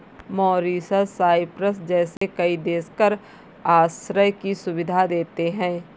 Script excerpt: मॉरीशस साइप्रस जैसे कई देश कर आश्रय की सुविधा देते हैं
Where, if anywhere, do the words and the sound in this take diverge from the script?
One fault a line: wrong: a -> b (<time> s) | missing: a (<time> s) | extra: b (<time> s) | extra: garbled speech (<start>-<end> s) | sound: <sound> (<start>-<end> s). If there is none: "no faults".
sound: dropout (2.2-2.2 s)